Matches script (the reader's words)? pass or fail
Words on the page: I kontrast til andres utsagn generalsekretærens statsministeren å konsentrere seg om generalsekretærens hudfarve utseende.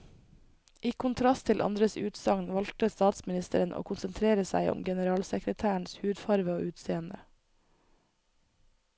fail